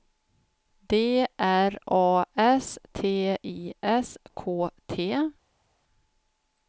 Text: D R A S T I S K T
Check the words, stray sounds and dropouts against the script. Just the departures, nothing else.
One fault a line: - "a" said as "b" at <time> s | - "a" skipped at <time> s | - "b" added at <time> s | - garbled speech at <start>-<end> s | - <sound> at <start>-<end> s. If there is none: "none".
none